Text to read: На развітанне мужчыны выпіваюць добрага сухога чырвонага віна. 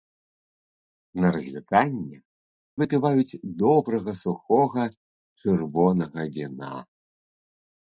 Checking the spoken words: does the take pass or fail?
fail